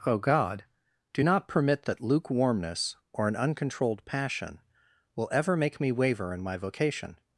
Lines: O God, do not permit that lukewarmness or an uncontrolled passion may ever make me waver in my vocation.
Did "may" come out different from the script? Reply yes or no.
yes